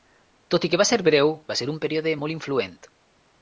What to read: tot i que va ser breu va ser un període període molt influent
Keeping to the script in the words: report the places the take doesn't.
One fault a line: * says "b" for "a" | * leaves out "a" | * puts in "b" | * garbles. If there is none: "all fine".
* leaves out "període"